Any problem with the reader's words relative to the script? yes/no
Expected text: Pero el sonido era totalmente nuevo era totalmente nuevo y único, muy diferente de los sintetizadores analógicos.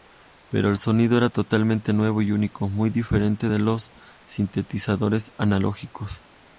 yes